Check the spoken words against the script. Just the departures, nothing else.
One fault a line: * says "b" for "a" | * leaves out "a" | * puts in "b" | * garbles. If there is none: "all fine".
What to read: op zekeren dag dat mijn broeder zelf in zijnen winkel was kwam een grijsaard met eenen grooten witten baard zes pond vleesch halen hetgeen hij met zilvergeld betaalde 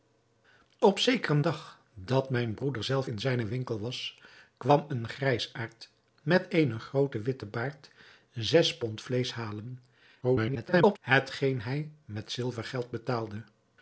* garbles